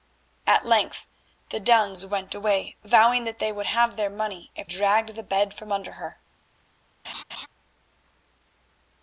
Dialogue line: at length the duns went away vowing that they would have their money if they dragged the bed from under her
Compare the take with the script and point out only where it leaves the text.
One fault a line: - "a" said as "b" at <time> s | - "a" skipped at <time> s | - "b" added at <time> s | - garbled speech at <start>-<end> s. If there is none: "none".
- "they" skipped at 4.7 s